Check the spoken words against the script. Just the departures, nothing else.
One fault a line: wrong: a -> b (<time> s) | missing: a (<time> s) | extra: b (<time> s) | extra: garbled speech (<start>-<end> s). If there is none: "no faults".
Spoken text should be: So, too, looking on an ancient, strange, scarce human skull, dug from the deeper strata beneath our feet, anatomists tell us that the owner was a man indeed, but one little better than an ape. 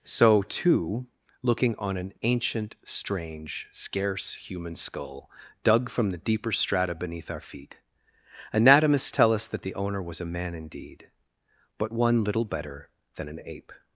no faults